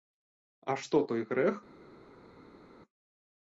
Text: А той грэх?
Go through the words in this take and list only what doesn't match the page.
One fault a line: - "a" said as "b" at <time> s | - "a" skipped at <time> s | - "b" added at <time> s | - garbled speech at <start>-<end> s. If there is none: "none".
- "што" added at 0.8 s